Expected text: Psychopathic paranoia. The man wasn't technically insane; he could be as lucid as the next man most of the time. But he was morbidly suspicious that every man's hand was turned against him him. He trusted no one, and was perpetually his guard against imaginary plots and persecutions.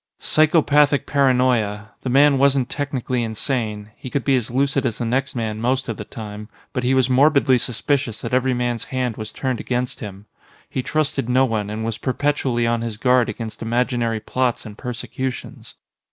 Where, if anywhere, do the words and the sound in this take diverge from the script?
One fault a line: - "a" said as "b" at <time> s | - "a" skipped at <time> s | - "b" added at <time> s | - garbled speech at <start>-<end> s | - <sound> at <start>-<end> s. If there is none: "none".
- "him" skipped at 10.3 s
- "on" added at 12.7 s